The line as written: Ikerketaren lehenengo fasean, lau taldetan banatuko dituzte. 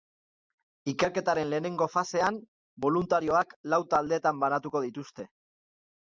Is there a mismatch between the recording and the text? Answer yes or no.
yes